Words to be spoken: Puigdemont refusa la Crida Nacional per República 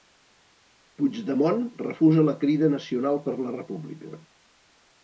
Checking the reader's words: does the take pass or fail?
fail